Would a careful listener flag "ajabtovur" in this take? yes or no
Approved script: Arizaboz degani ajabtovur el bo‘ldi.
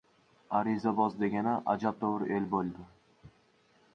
no